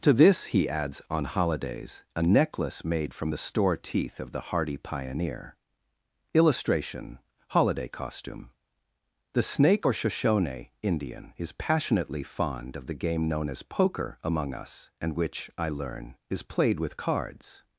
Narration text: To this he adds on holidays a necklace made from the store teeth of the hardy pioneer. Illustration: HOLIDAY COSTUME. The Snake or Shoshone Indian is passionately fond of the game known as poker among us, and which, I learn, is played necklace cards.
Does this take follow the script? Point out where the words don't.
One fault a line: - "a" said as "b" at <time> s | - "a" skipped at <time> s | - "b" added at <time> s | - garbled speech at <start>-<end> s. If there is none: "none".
- "necklace" said as "with" at 16.8 s